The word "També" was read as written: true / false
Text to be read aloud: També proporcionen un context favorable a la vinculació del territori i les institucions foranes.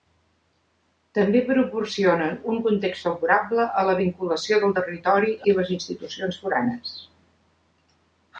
true